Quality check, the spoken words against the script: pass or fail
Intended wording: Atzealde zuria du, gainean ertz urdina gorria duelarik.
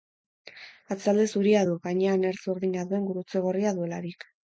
fail